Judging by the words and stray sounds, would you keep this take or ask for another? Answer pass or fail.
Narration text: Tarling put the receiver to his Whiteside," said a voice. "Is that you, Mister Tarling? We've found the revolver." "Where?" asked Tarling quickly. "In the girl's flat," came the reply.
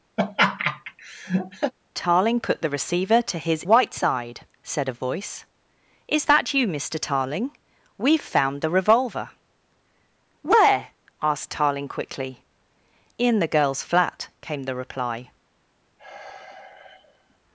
fail